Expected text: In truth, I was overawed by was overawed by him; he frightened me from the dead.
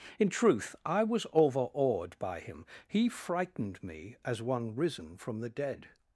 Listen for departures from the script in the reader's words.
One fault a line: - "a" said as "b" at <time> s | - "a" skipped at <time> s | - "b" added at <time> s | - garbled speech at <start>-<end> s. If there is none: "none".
- "was overawed by" skipped at 2.4 s
- "as one risen" added at 4.2 s